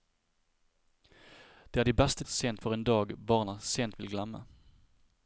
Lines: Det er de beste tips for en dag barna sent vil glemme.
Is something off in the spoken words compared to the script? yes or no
yes